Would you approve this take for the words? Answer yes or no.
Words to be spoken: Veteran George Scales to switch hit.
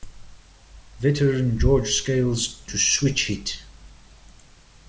yes